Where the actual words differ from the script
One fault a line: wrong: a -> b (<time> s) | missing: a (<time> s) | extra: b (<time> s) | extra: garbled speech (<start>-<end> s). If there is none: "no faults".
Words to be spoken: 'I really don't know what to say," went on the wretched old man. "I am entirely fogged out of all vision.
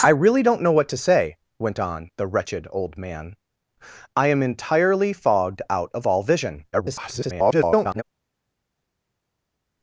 extra: garbled speech (6.7-8.0 s)